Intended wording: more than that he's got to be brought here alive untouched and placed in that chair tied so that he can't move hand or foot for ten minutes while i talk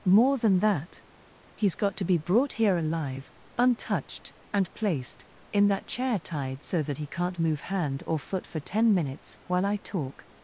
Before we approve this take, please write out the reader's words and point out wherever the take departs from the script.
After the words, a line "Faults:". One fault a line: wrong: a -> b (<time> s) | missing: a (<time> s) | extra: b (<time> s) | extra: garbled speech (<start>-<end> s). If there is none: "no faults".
more than that he's got to be brought here alive untouched and placed in that chair tied so that he can't move hand or foot for ten minutes while i talk
Faults:
no faults